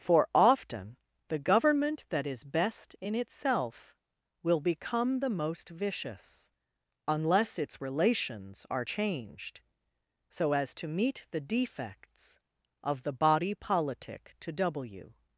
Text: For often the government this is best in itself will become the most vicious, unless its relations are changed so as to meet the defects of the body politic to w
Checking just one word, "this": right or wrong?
wrong